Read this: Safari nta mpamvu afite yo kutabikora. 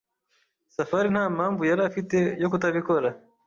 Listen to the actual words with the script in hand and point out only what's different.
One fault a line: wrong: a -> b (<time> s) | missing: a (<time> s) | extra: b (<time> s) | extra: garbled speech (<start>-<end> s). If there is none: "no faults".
extra: yari (1.7 s)